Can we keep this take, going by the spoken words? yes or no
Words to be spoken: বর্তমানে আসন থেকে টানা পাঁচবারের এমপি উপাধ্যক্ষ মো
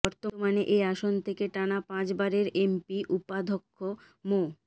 no